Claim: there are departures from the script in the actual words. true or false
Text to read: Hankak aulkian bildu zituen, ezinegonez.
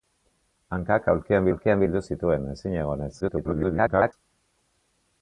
true